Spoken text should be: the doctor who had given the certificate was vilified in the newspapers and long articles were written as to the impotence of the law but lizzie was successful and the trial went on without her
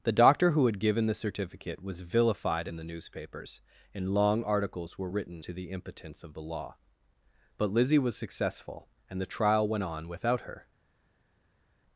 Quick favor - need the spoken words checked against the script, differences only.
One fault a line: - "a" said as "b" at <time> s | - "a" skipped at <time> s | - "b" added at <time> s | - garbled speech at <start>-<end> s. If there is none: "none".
- "as" skipped at 5.4 s